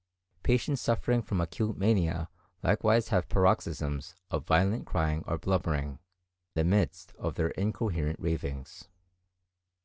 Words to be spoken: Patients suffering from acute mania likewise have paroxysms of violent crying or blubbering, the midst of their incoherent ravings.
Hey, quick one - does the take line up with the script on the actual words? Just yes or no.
yes